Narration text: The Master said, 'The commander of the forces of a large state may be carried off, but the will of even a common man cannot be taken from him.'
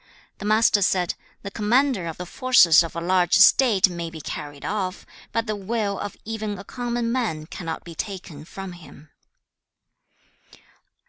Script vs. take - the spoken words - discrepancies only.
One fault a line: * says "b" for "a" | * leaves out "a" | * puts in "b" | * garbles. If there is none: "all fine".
all fine